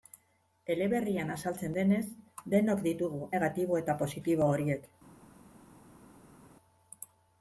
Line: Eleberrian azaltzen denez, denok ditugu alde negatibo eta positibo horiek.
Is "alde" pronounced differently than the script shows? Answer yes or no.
yes